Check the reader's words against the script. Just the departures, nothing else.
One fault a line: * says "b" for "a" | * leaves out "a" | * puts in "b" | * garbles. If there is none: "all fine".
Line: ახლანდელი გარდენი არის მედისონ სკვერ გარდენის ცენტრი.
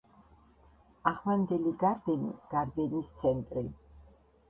* leaves out "არის მედისონ სკვერ"